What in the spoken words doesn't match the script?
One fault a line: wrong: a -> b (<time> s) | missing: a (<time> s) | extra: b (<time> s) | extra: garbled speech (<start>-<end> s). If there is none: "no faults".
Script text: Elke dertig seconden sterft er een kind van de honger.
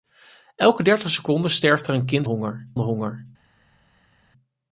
wrong: van -> honger (2.2 s)